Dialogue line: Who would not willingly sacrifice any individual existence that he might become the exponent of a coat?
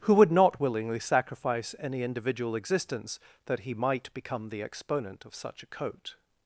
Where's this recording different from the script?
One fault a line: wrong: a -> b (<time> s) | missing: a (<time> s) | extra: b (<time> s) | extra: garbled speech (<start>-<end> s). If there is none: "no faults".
extra: such (5.3 s)